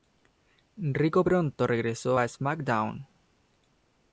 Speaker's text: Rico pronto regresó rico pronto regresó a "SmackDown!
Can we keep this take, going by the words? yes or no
no